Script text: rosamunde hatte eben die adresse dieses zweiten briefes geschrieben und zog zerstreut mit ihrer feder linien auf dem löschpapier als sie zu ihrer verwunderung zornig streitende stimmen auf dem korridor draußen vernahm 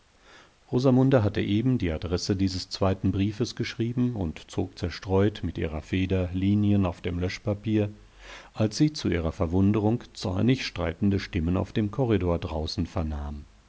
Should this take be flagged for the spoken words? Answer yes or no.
no